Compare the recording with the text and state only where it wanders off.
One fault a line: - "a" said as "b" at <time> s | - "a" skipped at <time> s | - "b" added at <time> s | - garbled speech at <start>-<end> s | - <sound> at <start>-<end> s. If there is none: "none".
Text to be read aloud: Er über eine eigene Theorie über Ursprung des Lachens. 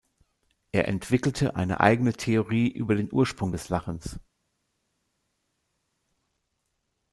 - "über" said as "entwickelte" at 0.9 s
- "den" added at 3.0 s